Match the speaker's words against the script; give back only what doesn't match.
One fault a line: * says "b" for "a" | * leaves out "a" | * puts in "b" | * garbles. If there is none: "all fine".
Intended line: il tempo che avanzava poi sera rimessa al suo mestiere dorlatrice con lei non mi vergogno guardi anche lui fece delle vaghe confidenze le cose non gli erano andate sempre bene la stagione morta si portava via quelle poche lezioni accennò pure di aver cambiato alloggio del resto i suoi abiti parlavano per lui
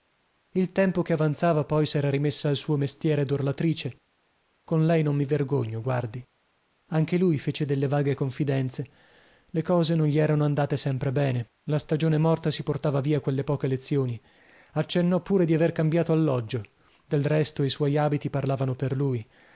all fine